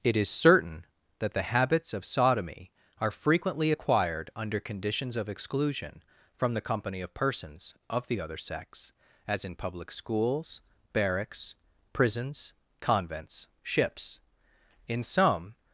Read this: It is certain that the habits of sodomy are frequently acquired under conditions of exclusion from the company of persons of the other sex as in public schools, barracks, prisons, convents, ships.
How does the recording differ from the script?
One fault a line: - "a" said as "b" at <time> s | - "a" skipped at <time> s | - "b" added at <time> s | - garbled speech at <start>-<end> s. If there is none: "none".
- "In some" added at 14.9 s